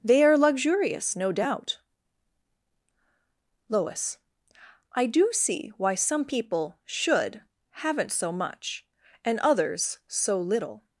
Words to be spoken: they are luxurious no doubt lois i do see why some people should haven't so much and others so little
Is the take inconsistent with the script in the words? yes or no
no